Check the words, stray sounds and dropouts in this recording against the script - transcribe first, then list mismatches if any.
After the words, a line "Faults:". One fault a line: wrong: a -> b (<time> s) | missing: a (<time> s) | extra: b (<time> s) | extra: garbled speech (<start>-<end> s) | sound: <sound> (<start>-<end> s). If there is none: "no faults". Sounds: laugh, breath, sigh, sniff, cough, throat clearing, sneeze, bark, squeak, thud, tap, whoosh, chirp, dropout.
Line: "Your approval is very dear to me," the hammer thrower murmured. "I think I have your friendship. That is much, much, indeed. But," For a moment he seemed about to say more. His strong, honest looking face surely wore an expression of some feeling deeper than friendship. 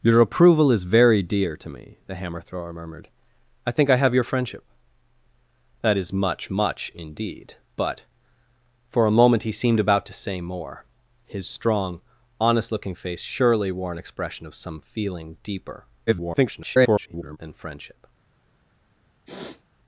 "Your approval is very dear to me," the hammer thrower murmured. "I think I have your friendship. That is much, much, indeed. But," For a moment he seemed about to say more. His strong, honest looking face surely wore an expression of some feeling deeper [garbled] than friendship.
Faults:
extra: garbled speech (16.1-17.4 s)
sound: sniff (19.2-19.6 s)